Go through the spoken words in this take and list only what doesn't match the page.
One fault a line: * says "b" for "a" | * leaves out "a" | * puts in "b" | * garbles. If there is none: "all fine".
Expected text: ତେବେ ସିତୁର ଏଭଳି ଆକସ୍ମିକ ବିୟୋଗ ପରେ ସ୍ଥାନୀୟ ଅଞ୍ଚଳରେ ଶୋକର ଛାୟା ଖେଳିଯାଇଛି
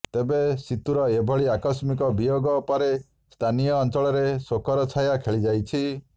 all fine